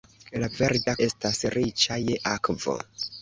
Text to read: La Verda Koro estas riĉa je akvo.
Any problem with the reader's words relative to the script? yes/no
yes